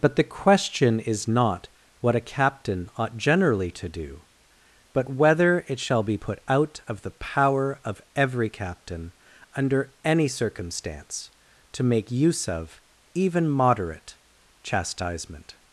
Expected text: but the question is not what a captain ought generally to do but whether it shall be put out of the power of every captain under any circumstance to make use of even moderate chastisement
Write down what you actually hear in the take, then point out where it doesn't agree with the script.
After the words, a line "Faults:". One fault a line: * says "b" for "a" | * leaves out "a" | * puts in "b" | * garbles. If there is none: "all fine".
but the question is not what a captain ought generally to do but whether it shall be put out of the power of every captain under any circumstance to make use of even moderate chastisement
Faults:
all fine